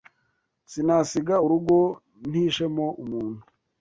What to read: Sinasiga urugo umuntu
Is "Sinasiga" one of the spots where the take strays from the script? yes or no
no